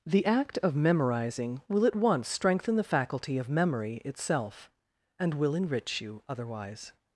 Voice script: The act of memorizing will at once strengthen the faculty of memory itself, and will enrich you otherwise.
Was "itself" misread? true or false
false